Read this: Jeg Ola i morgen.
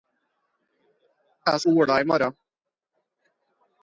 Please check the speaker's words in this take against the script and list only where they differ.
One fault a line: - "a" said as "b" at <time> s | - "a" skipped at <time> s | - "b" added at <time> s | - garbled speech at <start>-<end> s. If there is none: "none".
none